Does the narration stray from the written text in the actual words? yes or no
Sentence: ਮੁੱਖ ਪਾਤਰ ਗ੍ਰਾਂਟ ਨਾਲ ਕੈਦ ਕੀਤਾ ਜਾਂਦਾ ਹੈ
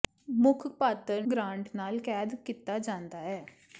no